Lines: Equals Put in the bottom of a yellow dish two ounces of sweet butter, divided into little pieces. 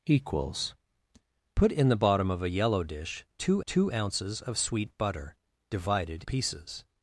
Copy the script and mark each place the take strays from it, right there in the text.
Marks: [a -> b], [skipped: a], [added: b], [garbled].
Equals Put in the bottom of a yellow dish two [added: two] ounces of sweet butter, divided [skipped: into little] pieces.